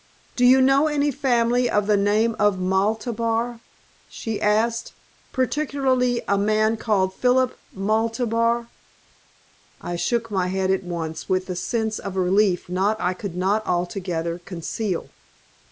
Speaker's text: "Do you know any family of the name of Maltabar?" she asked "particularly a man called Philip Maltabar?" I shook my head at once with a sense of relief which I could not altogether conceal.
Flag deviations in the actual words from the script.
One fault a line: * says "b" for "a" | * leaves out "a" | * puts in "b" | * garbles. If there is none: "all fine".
* says "not" for "which"